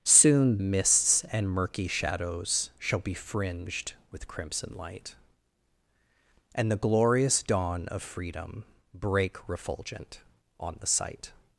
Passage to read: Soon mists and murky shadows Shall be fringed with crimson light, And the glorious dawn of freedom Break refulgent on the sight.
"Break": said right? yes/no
yes